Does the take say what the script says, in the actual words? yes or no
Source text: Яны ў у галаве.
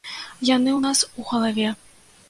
no